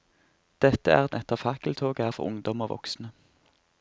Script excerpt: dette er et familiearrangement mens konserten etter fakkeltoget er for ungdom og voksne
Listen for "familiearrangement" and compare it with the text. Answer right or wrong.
wrong